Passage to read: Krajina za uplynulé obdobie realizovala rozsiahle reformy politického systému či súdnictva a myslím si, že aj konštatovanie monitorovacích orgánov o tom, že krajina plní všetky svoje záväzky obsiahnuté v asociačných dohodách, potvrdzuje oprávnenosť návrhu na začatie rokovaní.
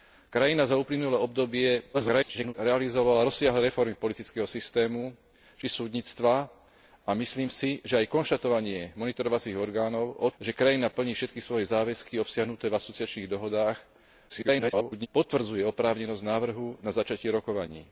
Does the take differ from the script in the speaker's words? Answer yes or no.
yes